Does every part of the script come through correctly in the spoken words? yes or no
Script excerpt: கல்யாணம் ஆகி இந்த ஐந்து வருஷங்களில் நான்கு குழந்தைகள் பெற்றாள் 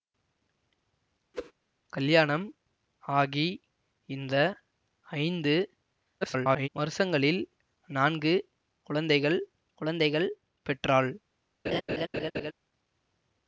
no